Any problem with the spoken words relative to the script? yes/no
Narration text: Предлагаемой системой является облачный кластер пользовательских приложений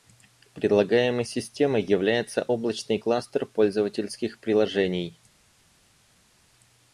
no